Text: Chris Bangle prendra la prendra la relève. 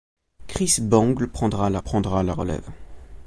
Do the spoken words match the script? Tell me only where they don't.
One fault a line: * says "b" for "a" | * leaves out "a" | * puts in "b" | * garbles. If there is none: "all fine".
all fine